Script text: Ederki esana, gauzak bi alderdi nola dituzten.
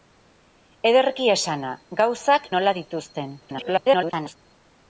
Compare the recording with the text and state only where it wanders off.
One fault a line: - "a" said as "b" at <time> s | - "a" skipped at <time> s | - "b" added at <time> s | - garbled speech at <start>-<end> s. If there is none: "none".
- "bi alderdi" skipped at 2.5 s
- garbled speech at 3.4-4.4 s